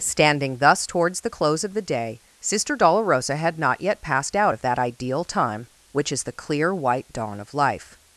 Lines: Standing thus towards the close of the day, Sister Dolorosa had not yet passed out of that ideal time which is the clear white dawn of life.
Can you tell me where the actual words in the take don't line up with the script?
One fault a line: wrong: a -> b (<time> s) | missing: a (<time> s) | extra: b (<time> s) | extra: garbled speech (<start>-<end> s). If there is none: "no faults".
no faults